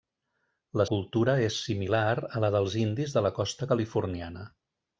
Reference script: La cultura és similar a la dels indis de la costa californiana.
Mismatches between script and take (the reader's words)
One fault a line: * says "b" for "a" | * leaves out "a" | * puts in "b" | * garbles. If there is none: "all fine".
all fine